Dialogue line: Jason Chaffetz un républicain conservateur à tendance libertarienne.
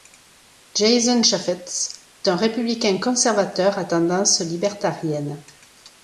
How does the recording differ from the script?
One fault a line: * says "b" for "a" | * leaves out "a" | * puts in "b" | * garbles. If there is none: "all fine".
all fine